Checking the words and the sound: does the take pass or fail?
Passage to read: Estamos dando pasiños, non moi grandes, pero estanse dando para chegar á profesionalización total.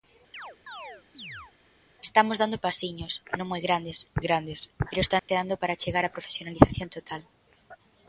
fail